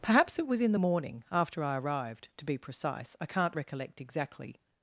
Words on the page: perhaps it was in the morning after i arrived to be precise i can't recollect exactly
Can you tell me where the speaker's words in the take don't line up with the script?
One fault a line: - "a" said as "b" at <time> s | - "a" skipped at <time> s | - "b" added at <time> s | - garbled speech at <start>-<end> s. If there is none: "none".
none